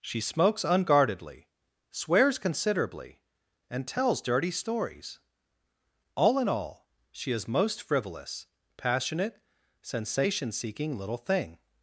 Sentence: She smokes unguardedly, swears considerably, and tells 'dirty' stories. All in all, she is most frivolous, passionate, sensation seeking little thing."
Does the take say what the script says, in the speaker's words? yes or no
yes